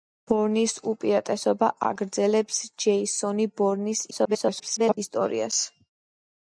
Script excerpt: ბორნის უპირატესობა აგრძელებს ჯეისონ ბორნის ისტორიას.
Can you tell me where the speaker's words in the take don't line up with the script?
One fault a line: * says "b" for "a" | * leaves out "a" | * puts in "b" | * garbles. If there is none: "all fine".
* garbles